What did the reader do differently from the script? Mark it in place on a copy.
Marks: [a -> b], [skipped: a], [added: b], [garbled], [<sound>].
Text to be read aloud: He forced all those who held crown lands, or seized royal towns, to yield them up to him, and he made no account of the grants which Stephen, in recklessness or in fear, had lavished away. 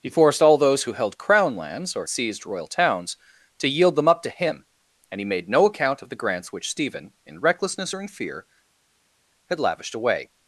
He forced all those who held crown lands, or seized royal towns, to yield them up to him, and he made no account of the grants which Stephen, in recklessness or in fear, had lavished away.